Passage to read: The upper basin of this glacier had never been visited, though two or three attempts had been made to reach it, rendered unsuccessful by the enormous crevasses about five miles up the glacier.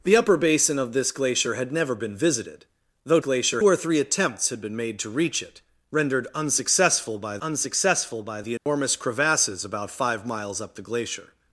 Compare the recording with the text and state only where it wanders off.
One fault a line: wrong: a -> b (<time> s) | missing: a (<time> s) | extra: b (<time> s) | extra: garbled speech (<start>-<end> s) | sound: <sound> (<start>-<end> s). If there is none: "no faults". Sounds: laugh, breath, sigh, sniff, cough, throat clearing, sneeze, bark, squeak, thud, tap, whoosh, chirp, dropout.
wrong: two -> glacier (3.2 s)
extra: unsuccessful by (7.4 s)
sound: dropout (8.6-8.7 s)